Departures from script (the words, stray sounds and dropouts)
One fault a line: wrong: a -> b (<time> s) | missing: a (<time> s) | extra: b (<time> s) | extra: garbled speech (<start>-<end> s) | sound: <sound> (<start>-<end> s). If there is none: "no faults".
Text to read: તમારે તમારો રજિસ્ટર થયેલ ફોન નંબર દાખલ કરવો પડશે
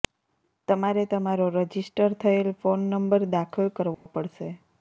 sound: dropout (3.9-4.1 s)